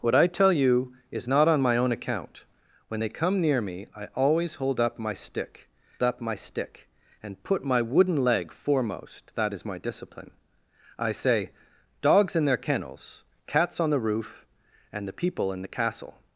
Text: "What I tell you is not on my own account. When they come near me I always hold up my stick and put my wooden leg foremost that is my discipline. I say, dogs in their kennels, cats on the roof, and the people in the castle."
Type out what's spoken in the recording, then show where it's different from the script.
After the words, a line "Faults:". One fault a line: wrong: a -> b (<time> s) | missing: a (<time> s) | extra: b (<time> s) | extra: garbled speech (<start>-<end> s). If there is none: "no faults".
"What I tell you is not on my own account. When they come near me I always hold up my stick up my stick and put my wooden leg foremost that is my discipline. I say, dogs in their kennels, cats on the roof, and the people in the castle."
Faults:
extra: up my stick (6.0 s)